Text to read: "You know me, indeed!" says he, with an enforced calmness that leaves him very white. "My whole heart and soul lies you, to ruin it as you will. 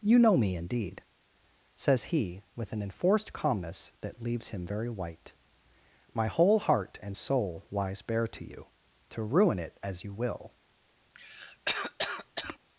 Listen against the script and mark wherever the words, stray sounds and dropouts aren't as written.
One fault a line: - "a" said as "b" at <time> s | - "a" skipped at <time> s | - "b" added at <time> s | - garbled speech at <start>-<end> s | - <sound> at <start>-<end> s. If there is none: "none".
- "bare to" added at 8.0 s
- cough at 11.1-12.6 s